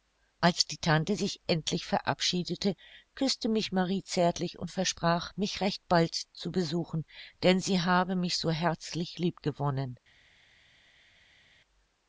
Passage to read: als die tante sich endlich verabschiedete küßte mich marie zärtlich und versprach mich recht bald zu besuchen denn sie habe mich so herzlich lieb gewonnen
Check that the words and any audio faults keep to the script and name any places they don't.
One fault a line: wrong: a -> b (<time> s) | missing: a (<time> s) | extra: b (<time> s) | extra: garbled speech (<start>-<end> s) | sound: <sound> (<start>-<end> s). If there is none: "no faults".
no faults